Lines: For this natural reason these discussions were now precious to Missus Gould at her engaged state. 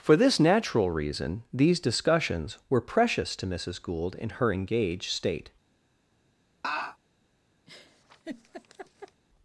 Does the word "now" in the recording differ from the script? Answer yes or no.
yes